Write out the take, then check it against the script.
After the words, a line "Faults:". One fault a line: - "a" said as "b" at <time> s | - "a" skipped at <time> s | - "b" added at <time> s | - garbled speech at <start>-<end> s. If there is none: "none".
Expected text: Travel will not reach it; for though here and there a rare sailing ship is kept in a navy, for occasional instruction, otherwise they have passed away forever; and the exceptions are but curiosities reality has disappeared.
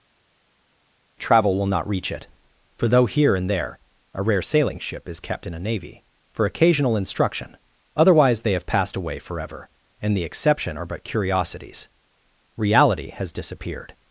Travel will not reach it; for though here and there a rare sailing ship is kept in a navy, for occasional instruction, otherwise they have passed away forever; and the exception are but curiosities reality has disappeared.
Faults:
- "exceptions" said as "exception" at 10.2 s